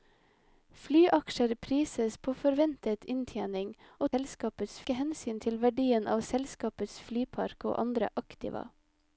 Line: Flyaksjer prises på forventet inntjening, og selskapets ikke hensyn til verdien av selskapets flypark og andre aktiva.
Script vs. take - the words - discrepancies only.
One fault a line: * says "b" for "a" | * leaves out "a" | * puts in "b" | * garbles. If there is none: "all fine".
all fine